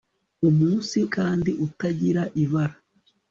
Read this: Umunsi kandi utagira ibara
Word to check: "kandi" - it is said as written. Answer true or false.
true